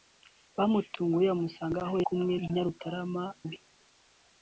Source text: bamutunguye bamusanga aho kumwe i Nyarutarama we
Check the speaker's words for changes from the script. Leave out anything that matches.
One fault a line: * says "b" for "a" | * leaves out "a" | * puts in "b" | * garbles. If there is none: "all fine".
all fine